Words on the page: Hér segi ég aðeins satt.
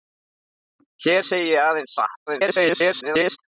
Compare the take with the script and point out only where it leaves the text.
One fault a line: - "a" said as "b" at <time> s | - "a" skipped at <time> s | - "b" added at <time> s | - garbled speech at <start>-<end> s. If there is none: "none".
- garbled speech at 2.3-3.4 s